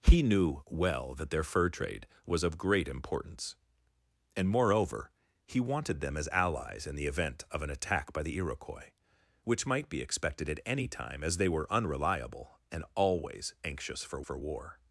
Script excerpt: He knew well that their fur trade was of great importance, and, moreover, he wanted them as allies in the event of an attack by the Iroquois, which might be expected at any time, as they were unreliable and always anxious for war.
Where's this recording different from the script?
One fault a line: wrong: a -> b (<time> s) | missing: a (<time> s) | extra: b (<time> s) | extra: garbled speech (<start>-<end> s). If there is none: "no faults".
extra: for (14.2 s)